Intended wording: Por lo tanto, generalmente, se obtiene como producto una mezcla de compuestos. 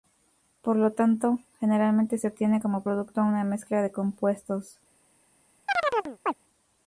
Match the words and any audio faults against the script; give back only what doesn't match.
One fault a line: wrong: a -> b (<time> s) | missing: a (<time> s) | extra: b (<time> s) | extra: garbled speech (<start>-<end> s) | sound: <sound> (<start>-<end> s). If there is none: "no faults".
sound: chirp (5.7-6.3 s)